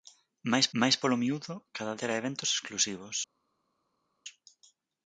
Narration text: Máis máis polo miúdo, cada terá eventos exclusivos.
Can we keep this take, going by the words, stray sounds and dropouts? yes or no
yes